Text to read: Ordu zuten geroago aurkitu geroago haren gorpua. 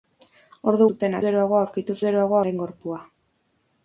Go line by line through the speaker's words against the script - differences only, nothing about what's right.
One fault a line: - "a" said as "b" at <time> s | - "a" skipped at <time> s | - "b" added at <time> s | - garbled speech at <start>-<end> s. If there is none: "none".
none